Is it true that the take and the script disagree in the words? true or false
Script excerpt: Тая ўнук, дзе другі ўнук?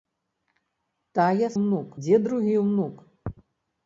false